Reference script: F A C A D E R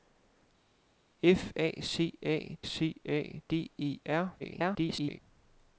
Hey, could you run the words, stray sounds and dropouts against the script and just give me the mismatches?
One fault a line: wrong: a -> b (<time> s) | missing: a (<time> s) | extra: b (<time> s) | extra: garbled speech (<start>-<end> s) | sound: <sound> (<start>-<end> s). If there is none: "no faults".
extra: C A (2.6 s)
extra: garbled speech (4.4-5.2 s)